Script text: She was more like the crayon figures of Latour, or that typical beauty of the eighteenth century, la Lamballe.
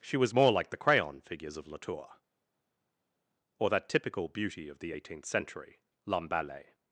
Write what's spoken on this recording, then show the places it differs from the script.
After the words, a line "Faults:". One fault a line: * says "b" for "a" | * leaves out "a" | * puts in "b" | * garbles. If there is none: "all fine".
She was more like the crayon figures of Latour, or that typical beauty of the eighteenth century, Lamballe.
Faults:
* leaves out "la"